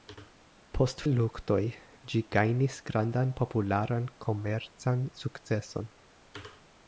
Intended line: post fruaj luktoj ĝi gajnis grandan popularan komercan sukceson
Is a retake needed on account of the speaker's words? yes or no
yes